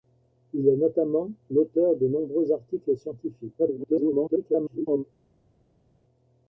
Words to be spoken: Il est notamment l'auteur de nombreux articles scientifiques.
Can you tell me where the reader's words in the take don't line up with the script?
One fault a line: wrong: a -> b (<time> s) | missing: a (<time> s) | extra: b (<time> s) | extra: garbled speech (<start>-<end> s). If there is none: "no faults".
extra: garbled speech (3.6-5.0 s)